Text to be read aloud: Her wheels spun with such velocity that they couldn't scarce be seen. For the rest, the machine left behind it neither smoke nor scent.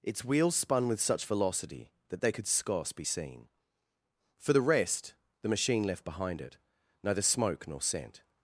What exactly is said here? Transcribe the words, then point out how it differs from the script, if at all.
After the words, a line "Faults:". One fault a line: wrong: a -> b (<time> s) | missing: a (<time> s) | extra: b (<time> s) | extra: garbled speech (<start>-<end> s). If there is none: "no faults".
Its wheels spun with such velocity that they could scarce be seen. For the rest, the machine left behind it neither smoke nor scent.
Faults:
wrong: Her -> Its (0.0 s)
wrong: couldn't -> could (2.3 s)